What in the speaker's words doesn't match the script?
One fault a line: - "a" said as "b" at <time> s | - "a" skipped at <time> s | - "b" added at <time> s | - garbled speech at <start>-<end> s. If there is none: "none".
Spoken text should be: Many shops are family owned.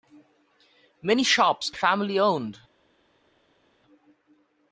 - "are" skipped at 1.7 s